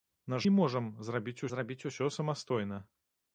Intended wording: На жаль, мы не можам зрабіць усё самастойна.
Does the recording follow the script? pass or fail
fail